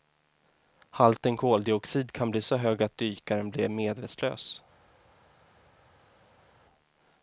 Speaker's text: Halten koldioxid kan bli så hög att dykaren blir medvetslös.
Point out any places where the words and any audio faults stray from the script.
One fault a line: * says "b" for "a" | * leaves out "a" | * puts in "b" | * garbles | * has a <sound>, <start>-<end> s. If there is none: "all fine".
all fine